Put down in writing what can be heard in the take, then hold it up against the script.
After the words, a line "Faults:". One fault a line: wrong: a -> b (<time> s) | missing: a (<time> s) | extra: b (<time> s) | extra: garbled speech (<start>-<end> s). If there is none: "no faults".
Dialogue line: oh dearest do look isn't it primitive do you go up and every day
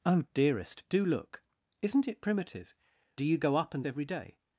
oh dearest do look isn't it primitive do you go up and every day
Faults:
no faults